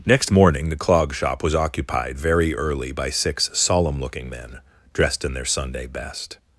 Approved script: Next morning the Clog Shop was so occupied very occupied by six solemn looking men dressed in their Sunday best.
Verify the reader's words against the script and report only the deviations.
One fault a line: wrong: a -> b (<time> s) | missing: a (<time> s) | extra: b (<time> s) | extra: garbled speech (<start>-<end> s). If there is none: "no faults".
missing: so (1.5 s)
wrong: occupied -> early (2.5 s)